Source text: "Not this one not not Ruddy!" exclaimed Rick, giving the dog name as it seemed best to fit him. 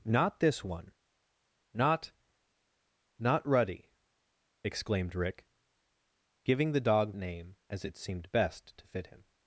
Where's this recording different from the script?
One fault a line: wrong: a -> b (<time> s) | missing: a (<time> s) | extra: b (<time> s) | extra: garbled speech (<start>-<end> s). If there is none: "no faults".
no faults